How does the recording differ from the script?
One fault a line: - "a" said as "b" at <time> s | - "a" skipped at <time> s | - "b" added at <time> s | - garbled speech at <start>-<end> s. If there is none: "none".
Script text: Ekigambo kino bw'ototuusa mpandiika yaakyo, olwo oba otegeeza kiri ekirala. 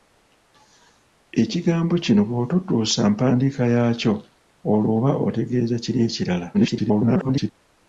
- garbled speech at 6.5-7.5 s